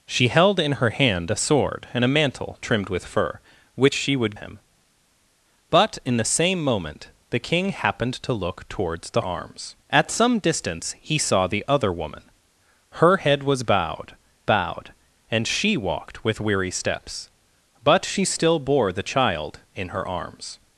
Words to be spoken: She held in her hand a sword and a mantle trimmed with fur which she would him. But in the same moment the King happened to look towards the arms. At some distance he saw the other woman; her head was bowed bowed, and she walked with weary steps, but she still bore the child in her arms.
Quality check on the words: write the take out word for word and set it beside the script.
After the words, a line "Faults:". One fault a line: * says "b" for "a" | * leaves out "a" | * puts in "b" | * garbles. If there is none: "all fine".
She held in her hand a sword and a mantle trimmed with fur which she would him. But in the same moment the King happened to look towards the arms. At some distance he saw the other woman; her head was bowed bowed, and she walked with weary steps, but she still bore the child in her arms.
Faults:
all fine